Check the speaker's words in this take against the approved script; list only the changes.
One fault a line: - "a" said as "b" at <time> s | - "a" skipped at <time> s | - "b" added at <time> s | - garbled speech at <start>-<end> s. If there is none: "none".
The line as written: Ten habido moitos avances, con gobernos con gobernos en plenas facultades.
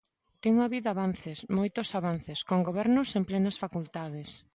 - "avances" added at 0.9 s
- "con gobernos" skipped at 3.1 s